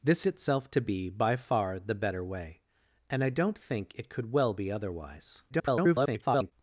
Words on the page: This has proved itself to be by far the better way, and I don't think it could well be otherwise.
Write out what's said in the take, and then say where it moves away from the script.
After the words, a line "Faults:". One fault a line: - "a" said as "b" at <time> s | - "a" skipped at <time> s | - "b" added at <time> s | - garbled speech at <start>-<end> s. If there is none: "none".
This itself to be by far the better way, and I don't think it could well be otherwise. [garbled]
Faults:
- "has proved" skipped at 0.2 s
- garbled speech at 5.5-6.5 s